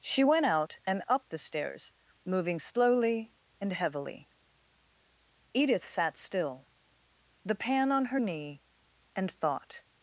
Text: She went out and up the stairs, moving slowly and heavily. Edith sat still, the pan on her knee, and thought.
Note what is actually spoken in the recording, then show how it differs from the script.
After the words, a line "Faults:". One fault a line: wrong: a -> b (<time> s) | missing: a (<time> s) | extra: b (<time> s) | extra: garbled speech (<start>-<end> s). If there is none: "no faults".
She went out and up the stairs, moving slowly and heavily. Edith sat still, the pan on her knee, and thought.
Faults:
no faults